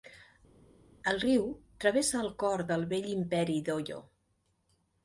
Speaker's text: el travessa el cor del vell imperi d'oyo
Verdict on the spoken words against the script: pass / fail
fail